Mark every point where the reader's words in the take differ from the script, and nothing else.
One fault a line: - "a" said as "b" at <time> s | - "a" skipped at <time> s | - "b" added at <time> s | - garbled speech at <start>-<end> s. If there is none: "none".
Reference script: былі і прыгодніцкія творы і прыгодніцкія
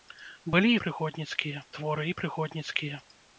none